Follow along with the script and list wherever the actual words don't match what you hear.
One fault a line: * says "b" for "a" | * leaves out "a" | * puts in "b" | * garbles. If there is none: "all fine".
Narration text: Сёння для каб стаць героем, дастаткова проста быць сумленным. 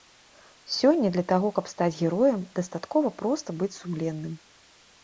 * puts in "таго"